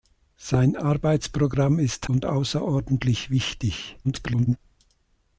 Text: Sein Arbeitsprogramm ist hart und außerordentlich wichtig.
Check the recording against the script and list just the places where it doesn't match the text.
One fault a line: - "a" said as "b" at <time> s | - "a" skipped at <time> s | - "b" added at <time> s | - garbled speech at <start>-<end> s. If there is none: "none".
- "hart" skipped at 2.1 s
- garbled speech at 4.0-4.6 s